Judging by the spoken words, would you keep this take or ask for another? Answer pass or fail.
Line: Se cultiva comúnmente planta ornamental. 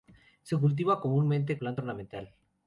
pass